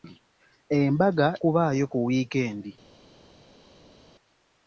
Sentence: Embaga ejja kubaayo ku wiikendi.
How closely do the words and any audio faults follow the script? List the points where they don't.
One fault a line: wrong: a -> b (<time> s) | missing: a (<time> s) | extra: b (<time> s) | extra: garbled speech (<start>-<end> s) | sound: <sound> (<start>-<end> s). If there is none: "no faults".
missing: ejja (1.3 s)